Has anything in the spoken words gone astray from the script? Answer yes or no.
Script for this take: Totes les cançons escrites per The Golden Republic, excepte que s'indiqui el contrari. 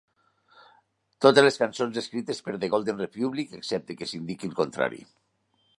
no